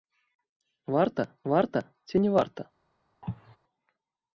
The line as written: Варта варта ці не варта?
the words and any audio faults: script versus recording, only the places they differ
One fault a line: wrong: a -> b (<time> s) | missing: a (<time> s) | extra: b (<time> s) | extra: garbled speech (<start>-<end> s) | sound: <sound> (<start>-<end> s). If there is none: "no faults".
sound: cough (3.2-3.6 s)